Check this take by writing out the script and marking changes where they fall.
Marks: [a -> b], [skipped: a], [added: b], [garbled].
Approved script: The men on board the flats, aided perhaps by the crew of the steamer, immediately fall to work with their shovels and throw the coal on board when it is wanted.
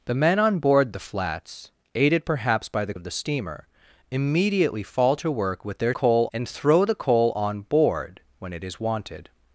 The men on board the flats, aided perhaps by the [skipped: crew] of the steamer, immediately fall to work with their [shovels -> coal] and throw the coal on board when it is wanted.